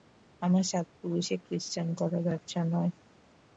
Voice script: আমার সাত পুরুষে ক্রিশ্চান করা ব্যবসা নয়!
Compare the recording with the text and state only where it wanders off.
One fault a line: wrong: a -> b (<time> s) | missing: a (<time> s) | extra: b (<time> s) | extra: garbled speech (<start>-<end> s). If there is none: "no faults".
no faults